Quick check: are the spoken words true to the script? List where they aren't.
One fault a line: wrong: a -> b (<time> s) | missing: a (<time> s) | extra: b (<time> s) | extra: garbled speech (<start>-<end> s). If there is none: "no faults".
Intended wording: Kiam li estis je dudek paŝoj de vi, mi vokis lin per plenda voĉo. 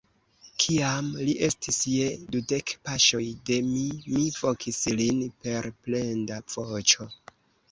wrong: vi -> mi (3.7 s)